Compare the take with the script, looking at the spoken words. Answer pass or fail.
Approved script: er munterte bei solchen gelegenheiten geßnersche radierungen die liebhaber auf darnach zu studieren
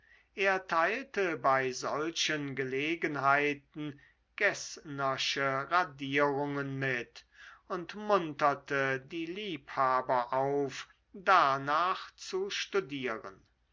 fail